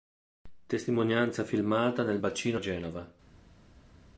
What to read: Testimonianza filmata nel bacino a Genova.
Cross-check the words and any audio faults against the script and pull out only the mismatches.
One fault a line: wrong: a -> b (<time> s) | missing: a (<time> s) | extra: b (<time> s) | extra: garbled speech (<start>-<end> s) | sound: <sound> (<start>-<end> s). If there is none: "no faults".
no faults